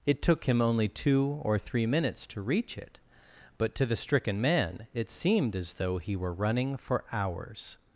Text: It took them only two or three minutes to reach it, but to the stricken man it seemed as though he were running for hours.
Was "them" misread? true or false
true